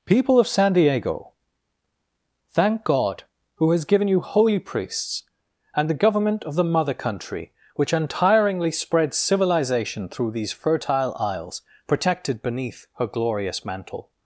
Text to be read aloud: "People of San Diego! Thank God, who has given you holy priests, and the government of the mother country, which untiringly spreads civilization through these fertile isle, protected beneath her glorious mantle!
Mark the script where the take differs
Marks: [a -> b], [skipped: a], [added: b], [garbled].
"People of San Diego! Thank God, who has given you holy priests, and the government of the mother country, which untiringly spreads civilization through these fertile [isle, -> isles] protected beneath her glorious mantle!